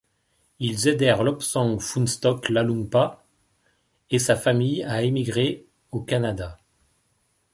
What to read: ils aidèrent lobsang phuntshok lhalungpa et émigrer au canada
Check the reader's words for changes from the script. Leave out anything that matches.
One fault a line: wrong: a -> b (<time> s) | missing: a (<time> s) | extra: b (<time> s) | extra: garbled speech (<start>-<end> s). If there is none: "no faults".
extra: sa famille à (4.2 s)